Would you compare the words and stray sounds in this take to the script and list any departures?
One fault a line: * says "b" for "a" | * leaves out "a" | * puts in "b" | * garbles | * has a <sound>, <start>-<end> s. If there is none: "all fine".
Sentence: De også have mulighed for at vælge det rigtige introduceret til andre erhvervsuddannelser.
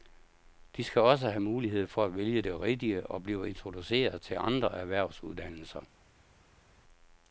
* puts in "skal"
* puts in "og blive"